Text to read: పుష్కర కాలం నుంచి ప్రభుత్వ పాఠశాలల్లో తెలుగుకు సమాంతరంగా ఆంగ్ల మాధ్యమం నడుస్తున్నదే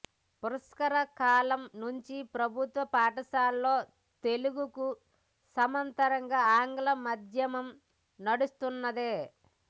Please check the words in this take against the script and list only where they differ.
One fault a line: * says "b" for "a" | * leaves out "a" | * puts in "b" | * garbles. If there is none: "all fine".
all fine